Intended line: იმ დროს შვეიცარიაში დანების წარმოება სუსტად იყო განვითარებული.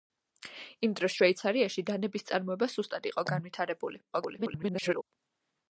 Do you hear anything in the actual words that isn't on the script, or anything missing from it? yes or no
yes